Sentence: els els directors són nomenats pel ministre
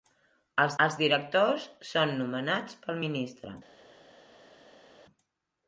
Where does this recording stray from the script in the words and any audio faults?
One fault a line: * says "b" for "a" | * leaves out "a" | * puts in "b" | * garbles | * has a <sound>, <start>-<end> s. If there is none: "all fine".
all fine